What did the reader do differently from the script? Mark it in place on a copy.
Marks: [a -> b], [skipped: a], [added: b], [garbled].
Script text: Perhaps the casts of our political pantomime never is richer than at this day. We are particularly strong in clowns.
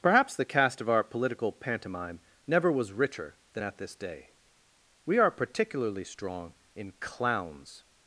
Perhaps the [casts -> cast] of our political pantomime never [is -> was] richer than at this day. We are particularly strong in clowns.